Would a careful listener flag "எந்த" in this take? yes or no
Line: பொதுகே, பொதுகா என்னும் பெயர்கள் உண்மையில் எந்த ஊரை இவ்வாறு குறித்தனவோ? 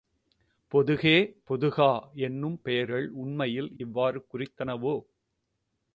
yes